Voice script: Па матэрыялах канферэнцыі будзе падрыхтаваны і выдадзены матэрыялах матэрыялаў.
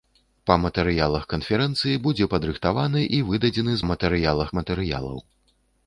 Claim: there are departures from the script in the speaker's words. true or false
false